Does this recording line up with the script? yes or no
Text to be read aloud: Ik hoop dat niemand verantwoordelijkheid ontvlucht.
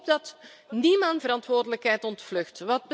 yes